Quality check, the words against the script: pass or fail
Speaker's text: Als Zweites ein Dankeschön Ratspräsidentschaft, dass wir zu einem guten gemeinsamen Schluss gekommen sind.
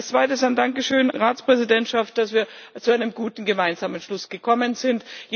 pass